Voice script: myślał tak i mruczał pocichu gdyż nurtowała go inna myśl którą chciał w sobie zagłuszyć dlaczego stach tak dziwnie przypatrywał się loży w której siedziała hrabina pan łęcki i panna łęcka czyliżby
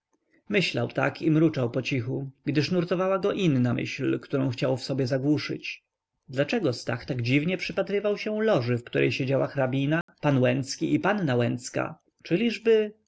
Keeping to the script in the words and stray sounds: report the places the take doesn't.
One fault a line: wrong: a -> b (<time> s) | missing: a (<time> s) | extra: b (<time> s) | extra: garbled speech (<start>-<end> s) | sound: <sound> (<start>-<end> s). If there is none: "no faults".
sound: dropout (10.0-10.1 s)